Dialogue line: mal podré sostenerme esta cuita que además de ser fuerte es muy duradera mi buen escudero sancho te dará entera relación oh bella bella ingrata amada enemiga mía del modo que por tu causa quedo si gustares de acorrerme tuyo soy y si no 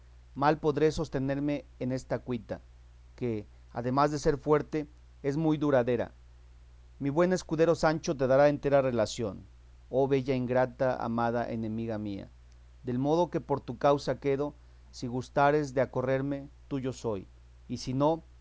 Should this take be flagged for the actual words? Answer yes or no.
yes